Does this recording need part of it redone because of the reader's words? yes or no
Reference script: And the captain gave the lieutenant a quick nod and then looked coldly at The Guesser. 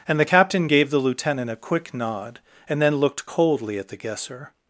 no